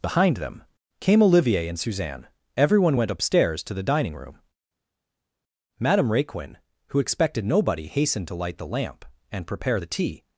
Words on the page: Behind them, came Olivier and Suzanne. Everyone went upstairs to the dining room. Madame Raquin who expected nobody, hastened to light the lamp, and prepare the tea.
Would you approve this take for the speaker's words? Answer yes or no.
yes